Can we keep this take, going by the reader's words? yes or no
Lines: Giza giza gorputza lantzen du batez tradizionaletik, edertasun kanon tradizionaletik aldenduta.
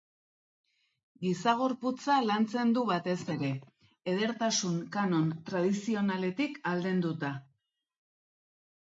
no